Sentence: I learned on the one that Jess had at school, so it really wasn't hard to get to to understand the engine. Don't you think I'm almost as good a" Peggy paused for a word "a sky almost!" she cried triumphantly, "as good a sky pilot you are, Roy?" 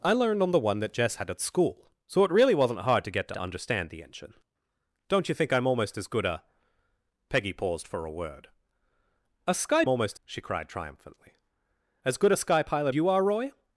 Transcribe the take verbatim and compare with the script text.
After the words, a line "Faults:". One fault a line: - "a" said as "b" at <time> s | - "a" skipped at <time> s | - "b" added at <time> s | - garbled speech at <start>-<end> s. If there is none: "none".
I learned on the one that Jess had at school, so it really wasn't hard to get to to understand the engine. Don't you think I'm almost as good a" Peggy paused for a word "a sky almost!" she cried triumphantly, "as good a sky pilot you are, Roy?"
Faults:
none